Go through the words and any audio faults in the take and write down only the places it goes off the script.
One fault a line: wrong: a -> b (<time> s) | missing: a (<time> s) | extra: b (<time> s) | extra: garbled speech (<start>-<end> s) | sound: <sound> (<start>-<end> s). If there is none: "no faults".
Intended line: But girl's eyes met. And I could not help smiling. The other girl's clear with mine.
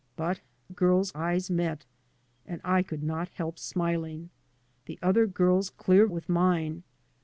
no faults